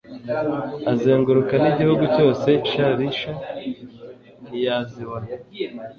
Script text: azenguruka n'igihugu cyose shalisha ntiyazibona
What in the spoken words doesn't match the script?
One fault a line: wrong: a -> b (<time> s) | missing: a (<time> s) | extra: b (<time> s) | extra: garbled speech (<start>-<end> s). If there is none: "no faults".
no faults